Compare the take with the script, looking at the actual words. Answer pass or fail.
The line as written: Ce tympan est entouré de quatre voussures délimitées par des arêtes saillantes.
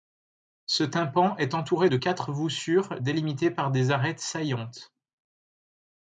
pass